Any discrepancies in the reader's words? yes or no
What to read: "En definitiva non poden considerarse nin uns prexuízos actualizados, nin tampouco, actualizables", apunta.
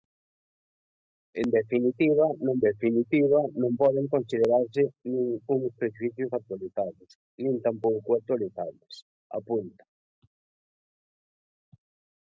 yes